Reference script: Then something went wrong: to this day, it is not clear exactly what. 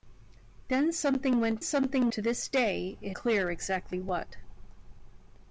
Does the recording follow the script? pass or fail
fail